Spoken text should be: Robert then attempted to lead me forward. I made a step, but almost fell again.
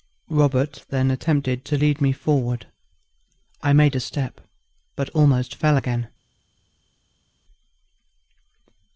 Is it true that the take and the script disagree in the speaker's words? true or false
false